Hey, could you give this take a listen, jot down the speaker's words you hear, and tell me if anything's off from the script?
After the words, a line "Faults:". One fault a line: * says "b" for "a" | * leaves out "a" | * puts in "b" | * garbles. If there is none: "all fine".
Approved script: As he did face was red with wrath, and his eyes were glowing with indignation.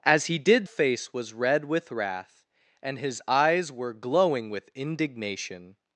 As he did face was red with wrath, and his eyes were glowing with indignation.
Faults:
all fine